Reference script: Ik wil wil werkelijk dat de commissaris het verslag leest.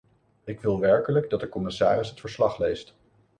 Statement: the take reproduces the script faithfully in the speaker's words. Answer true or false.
false